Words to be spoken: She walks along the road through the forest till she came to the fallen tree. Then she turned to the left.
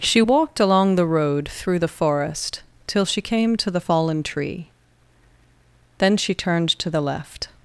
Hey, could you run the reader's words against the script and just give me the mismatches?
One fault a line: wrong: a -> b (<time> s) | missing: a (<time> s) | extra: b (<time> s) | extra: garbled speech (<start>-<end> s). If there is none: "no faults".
wrong: walks -> walked (0.2 s)